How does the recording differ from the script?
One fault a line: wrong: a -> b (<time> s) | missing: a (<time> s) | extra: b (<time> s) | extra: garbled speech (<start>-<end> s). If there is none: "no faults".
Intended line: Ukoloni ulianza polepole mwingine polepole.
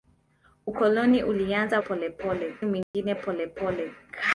no faults